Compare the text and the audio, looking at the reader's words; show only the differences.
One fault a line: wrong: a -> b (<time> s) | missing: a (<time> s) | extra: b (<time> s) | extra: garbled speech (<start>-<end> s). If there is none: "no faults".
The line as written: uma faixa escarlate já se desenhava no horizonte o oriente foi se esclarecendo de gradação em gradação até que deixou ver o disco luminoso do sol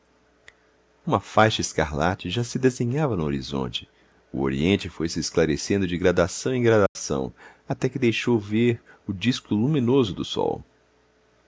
no faults